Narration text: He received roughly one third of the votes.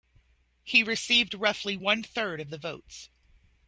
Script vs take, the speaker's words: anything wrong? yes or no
no